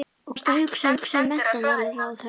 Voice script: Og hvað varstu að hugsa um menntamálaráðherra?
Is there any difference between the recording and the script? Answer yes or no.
yes